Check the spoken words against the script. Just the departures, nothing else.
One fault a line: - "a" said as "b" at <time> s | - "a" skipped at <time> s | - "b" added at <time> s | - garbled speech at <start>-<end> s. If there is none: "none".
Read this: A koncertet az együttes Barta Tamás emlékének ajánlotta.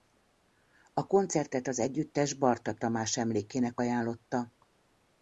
none